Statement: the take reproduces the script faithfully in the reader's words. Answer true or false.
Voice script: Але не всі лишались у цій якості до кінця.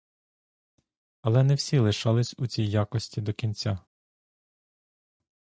true